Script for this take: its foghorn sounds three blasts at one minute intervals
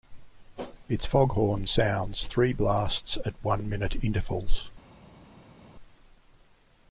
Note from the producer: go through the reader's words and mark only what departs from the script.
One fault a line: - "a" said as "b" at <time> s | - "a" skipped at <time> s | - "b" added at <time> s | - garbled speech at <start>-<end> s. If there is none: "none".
none